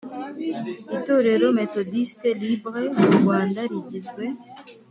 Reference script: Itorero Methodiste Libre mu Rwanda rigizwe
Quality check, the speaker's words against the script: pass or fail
pass